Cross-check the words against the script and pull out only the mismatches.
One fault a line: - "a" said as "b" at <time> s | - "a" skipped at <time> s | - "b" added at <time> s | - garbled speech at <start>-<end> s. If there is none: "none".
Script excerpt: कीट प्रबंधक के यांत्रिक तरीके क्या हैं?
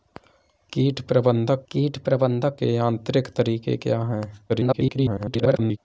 - "कीट प्रबंधक" added at 1.7 s
- garbled speech at 4.5-5.8 s